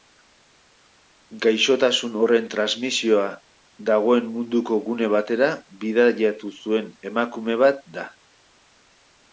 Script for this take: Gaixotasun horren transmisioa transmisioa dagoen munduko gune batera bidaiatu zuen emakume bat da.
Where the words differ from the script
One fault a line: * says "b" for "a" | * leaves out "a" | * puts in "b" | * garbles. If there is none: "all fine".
* leaves out "transmisioa"